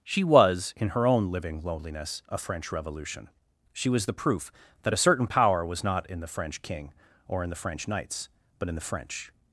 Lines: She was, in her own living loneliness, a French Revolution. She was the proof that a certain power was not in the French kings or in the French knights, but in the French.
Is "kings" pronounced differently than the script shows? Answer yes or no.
yes